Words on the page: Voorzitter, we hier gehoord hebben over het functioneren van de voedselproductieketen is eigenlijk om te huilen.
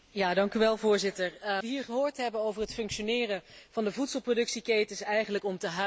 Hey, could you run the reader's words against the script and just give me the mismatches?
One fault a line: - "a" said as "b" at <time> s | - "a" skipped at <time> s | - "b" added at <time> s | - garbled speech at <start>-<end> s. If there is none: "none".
none